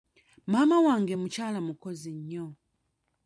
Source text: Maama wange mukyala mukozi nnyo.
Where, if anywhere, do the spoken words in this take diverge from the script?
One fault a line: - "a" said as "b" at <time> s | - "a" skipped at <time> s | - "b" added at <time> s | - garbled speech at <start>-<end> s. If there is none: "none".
none